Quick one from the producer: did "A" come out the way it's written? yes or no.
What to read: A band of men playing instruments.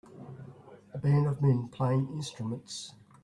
yes